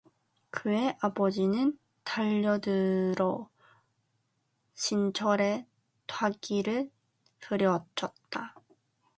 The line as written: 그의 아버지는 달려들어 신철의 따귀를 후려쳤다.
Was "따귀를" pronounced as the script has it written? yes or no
yes